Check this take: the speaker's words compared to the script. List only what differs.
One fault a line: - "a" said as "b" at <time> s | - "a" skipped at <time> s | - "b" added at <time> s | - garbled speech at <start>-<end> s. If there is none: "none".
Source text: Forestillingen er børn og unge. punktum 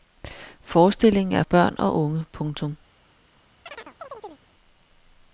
none